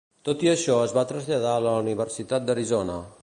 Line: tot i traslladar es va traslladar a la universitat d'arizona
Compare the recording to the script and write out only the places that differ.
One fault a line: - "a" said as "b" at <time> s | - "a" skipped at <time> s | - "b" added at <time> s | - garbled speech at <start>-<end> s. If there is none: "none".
- "traslladar" said as "això" at 0.5 s